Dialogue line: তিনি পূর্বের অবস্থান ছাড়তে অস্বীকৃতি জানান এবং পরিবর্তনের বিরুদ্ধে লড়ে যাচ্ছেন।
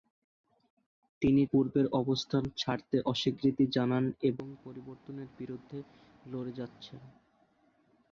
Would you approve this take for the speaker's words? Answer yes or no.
yes